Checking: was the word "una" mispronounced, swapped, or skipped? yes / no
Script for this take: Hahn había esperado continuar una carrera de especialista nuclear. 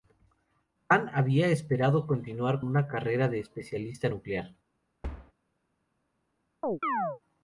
no